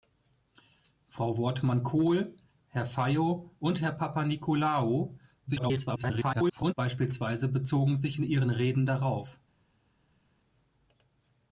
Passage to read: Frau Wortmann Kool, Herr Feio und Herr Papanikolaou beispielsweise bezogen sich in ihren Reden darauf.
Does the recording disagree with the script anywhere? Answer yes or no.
yes